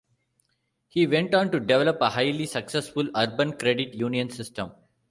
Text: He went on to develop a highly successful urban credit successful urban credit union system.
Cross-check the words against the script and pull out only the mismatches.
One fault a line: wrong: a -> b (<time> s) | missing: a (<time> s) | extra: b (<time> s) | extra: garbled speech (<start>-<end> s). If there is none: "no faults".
missing: successful urban credit (4.0 s)